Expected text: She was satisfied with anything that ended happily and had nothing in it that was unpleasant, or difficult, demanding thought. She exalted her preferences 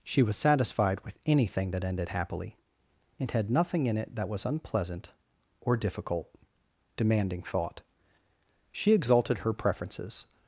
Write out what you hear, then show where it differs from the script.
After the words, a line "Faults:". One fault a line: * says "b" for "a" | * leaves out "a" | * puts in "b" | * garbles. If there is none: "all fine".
She was satisfied with anything that ended happily and had nothing in it that was unpleasant, or difficult, demanding thought. She exalted her preferences
Faults:
all fine